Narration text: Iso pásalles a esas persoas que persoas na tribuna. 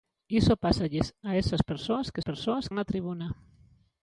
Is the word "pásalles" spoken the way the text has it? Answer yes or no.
yes